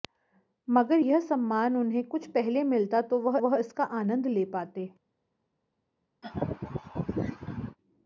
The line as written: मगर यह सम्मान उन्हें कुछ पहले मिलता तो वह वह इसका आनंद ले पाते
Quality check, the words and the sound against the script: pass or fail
fail